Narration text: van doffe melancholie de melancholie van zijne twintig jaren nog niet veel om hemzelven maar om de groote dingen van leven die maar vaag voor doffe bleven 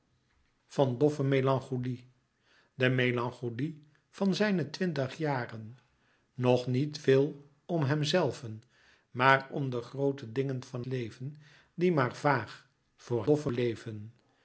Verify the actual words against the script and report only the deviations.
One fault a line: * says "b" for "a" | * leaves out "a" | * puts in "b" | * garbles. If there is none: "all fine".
all fine